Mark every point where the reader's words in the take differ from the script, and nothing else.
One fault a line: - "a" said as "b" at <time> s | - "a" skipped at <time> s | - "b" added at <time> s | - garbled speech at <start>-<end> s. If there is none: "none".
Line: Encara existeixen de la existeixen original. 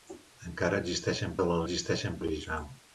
none